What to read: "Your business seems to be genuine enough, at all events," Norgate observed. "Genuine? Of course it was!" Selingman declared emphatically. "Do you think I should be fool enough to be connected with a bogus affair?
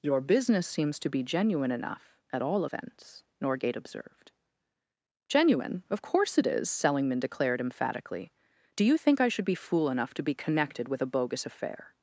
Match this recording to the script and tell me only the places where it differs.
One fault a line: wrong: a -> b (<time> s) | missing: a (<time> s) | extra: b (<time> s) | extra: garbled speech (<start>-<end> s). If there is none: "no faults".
wrong: was -> is (6.5 s)